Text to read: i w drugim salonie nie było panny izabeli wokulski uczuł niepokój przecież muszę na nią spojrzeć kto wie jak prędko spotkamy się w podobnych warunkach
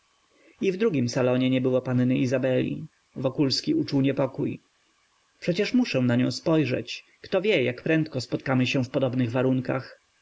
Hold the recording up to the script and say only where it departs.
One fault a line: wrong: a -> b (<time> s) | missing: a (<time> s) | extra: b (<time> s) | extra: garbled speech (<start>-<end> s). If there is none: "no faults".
no faults